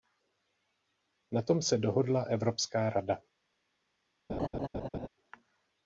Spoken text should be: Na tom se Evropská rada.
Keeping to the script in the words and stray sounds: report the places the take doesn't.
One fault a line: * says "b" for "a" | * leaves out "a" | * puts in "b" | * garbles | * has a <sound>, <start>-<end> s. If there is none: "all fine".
* puts in "dohodla"
* has a laugh, 4.3-5.1 s